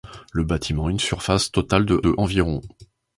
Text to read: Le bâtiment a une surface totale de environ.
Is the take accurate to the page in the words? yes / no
no